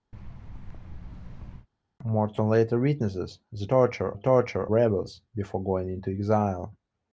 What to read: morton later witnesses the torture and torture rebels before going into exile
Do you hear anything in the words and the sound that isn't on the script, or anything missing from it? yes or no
yes